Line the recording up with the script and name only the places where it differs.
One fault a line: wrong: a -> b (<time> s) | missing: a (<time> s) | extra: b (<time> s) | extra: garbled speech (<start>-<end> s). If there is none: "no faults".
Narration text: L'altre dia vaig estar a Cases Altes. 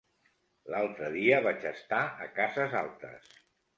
no faults